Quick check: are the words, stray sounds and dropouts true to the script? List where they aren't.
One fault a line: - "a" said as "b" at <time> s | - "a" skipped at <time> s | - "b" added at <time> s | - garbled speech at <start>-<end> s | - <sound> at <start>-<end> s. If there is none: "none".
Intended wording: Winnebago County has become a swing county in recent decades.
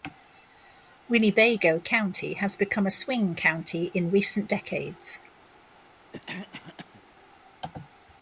- cough at 6.1-7.0 s